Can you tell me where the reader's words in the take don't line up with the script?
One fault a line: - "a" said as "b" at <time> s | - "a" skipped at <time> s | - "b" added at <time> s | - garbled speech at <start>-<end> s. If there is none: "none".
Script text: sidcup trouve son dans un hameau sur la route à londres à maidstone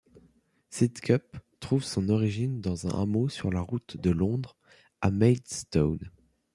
- "origine" added at 2.1 s
- "à" said as "de" at 4.0 s